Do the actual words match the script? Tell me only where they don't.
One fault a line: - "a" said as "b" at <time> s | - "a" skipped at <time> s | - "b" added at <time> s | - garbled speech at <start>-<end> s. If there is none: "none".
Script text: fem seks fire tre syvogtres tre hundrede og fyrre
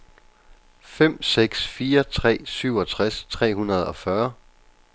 none